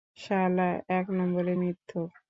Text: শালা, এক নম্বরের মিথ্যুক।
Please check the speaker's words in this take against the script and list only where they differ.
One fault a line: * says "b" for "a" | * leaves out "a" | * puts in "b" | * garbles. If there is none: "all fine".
all fine